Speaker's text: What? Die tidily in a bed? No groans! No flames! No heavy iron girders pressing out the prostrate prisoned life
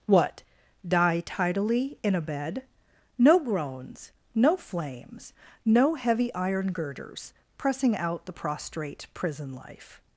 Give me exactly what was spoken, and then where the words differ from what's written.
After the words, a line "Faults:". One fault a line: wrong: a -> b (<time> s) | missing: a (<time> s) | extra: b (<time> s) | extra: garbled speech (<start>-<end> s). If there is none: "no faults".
What? Die tidily in a bed? No groans! No flames! No heavy iron girders pressing out the prostrate prison life
Faults:
wrong: prisoned -> prison (9.1 s)